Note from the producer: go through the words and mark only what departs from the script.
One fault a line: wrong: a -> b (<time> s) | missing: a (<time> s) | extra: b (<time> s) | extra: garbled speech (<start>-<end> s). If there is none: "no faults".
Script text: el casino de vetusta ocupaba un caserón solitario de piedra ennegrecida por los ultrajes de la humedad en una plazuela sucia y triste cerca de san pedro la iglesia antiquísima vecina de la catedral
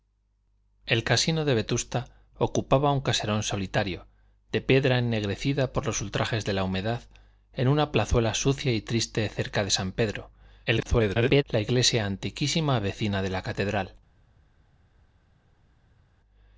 extra: garbled speech (10.7-11.4 s)